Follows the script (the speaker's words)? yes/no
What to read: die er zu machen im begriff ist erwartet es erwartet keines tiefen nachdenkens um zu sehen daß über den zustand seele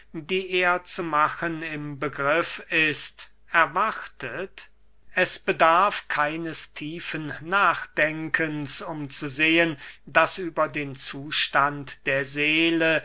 no